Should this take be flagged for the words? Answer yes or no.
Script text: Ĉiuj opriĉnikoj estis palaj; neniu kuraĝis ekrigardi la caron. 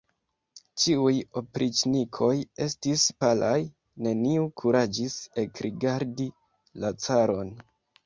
no